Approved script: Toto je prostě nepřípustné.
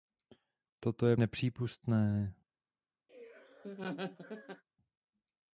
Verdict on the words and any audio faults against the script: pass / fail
fail